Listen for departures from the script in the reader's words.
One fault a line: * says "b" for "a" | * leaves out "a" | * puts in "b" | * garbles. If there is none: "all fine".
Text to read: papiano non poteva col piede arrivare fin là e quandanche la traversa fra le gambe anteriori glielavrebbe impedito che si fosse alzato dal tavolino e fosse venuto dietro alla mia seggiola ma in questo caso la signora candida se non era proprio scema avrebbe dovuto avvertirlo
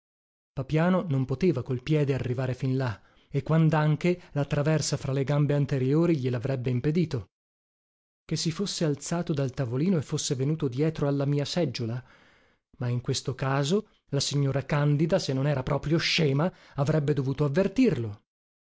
all fine